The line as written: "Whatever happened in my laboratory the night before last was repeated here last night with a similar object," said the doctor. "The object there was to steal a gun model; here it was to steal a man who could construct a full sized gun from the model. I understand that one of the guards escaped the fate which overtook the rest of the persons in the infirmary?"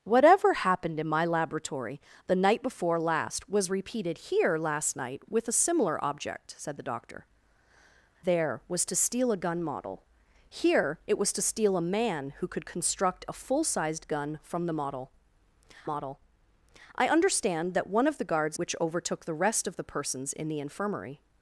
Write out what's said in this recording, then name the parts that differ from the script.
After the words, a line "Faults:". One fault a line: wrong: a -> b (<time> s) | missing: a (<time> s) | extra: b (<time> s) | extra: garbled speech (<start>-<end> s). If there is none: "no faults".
"Whatever happened in my laboratory the night before last was repeated here last night with a similar object," said the doctor. "There was to steal a gun model; here it was to steal a man who could construct a full sized gun from the model model. I understand that one of the guards which overtook the rest of the persons in the infirmary?"
Faults:
missing: The object (7.3 s)
extra: model (15.9 s)
missing: escaped the fate (18.6 s)